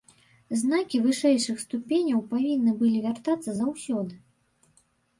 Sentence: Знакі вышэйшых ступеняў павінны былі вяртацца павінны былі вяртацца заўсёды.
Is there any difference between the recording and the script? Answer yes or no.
yes